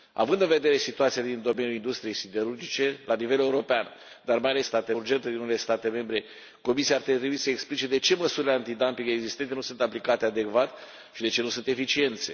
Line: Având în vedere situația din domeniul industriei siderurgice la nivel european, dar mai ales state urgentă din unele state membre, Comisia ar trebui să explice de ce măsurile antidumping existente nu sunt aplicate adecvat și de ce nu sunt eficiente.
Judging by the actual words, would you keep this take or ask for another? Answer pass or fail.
pass